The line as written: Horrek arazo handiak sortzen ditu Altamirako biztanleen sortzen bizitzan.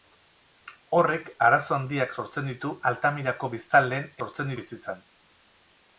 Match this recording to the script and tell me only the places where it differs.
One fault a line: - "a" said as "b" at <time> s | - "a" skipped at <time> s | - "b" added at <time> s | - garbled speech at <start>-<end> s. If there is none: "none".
none